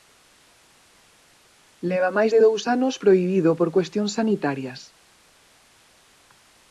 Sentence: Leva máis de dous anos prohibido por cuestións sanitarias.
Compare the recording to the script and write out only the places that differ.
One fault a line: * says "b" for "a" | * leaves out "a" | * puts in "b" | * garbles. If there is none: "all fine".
all fine